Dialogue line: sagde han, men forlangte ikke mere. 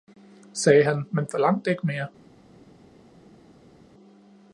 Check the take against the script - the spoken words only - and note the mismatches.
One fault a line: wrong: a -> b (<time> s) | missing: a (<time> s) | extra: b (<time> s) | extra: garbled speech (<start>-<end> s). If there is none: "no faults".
no faults